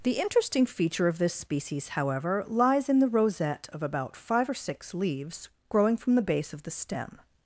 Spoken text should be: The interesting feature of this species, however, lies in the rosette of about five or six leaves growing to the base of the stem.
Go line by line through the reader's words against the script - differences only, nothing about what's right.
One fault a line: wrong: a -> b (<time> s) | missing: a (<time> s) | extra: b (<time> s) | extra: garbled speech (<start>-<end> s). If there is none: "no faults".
wrong: to -> from (6.0 s)